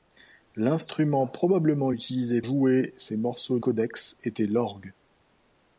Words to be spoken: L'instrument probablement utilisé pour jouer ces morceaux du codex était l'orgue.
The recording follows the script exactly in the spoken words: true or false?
false